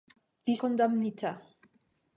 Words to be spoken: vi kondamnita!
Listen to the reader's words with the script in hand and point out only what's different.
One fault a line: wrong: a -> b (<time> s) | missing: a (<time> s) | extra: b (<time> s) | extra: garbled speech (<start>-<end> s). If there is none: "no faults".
no faults